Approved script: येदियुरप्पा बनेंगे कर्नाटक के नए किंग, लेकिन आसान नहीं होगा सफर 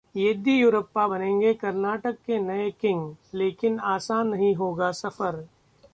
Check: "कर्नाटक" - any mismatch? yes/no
no